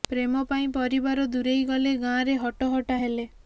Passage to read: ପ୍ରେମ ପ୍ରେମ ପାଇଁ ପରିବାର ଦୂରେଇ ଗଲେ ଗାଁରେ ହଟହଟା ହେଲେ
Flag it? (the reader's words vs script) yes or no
yes